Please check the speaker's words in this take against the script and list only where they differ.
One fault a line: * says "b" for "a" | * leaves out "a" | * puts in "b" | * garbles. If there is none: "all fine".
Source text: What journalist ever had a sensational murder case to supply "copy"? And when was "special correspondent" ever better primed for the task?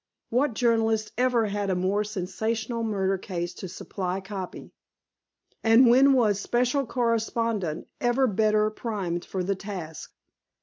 * puts in "more"